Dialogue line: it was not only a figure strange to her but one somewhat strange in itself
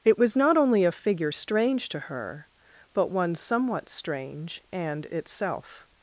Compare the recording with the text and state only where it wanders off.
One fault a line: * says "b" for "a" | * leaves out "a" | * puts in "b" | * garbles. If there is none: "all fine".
* says "and" for "in"